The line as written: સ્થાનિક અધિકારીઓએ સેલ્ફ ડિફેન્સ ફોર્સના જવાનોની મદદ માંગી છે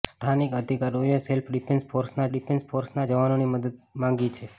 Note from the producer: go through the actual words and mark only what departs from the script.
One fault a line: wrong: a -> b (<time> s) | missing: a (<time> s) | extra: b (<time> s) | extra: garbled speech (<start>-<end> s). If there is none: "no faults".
extra: ડિફેન્સ ફોર્સના (2.3 s)